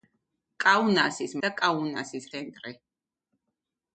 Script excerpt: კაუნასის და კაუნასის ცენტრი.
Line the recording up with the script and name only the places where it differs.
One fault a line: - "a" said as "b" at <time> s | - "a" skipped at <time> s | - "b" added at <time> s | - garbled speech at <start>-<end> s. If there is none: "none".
none